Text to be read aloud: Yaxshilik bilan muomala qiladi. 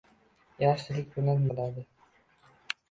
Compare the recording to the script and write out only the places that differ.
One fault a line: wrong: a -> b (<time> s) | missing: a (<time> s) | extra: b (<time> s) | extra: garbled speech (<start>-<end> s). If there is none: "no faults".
missing: muomala (1.4 s)